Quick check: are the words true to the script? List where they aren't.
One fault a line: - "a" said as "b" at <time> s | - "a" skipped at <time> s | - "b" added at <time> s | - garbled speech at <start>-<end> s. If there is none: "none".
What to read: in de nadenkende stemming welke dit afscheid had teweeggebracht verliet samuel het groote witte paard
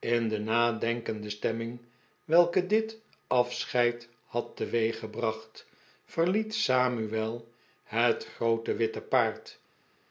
none